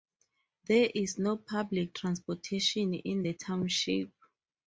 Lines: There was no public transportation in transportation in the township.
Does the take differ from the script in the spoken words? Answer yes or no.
yes